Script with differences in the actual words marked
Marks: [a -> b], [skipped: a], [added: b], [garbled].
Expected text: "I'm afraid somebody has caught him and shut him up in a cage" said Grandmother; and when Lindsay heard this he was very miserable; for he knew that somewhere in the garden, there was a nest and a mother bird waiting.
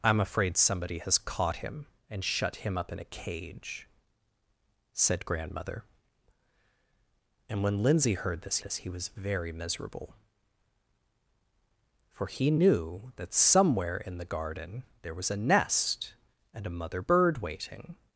"I'm afraid somebody has caught him and shut him up in a cage" said Grandmother; and when Lindsay heard this [added: this] he was very miserable; for he knew that somewhere in the garden, there was a nest and a mother bird waiting.